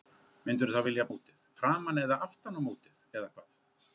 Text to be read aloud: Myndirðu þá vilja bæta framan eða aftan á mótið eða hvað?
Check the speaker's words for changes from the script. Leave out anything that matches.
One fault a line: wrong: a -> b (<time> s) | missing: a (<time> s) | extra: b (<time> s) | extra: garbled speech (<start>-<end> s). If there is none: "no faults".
wrong: bæta -> mótið (1.1 s)